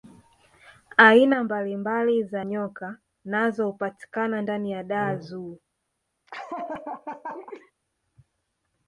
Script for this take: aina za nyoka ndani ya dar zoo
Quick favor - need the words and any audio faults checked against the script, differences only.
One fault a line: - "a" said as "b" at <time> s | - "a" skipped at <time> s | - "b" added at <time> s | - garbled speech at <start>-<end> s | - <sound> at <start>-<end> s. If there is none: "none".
- "mbalimbali" added at 1.4 s
- "nazo hupatikana" added at 3.2 s
- laugh at 6.3-7.7 s